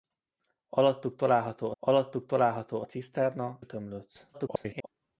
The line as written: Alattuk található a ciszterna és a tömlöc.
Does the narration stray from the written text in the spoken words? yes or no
yes